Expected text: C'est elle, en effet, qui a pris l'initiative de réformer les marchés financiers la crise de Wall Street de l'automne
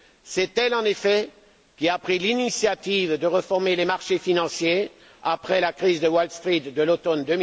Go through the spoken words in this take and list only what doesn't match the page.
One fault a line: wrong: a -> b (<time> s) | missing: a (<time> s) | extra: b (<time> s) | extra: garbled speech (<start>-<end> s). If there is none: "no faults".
extra: après (5.2 s)